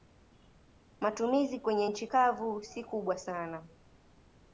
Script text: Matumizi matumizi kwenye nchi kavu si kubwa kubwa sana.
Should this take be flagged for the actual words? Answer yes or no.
yes